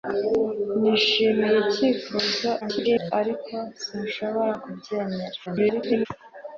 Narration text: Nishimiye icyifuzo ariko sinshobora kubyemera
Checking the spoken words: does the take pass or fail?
fail